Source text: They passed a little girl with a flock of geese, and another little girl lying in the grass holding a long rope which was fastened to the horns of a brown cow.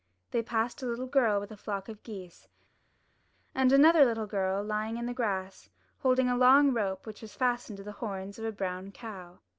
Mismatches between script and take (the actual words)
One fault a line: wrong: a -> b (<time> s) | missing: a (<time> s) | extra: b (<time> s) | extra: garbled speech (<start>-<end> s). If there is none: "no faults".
no faults